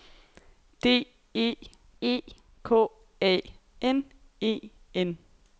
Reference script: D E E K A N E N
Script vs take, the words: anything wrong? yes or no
no